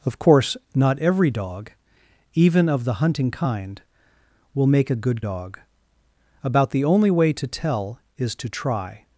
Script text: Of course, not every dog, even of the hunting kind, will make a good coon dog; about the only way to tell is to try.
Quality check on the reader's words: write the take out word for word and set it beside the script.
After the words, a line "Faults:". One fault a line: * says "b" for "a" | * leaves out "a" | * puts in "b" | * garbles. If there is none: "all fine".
Of course, not every dog, even of the hunting kind, will make a good dog; about the only way to tell is to try.
Faults:
* leaves out "coon"